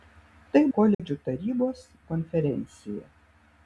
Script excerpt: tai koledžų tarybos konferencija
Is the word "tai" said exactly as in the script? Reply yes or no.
yes